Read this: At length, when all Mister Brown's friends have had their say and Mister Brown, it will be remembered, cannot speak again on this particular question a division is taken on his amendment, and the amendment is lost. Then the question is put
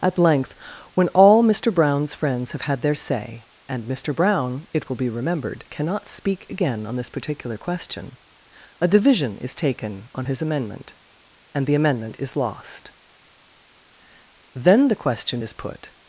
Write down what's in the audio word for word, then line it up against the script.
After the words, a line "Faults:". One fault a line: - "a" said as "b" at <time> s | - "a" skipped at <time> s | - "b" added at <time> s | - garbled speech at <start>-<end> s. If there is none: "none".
At length, when all Mister Brown's friends have had their say and Mister Brown, it will be remembered, cannot speak again on this particular question a division is taken on his amendment, and the amendment is lost. Then the question is put
Faults:
none